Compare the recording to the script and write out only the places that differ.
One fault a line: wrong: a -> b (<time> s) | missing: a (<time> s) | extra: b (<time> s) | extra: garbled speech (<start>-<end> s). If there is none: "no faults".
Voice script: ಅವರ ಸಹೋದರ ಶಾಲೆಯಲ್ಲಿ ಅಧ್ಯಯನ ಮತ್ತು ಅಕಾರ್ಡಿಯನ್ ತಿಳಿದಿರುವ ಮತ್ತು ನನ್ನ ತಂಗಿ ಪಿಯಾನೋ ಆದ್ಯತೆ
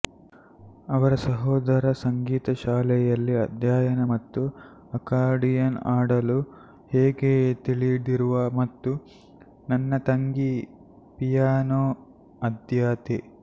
extra: ಸಂಗೀತ (2.0 s)
extra: ಆಡಲು ಹೇಗೆ (5.9 s)